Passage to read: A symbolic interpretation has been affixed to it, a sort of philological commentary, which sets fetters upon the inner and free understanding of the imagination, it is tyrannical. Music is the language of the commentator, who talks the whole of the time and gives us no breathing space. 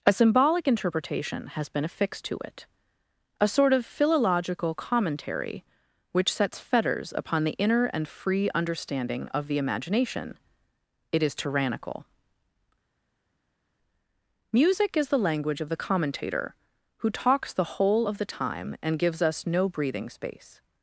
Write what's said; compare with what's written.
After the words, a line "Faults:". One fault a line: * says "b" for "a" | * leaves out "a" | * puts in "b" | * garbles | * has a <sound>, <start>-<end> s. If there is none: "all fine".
A symbolic interpretation has been affixed to it, a sort of philological commentary, which sets fetters upon the inner and free understanding of the imagination, it is tyrannical. Music is the language of the commentator, who talks the whole of the time and gives us no breathing space.
Faults:
all fine